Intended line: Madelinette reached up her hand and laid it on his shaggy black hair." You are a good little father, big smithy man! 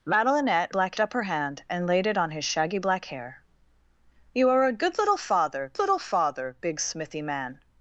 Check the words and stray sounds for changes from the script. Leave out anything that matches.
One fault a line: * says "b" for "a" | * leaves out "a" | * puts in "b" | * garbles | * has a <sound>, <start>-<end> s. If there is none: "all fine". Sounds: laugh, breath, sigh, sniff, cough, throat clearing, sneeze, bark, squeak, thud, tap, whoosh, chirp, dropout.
* says "black" for "reached"
* puts in "little father"